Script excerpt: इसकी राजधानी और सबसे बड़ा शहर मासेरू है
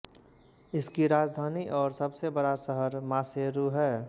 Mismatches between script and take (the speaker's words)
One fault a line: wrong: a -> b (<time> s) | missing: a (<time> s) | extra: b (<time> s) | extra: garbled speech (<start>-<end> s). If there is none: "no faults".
no faults